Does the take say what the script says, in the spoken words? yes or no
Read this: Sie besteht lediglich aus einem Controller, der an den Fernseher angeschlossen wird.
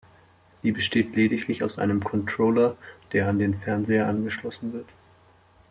yes